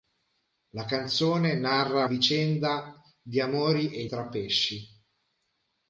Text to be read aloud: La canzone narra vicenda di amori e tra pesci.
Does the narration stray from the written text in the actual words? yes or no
no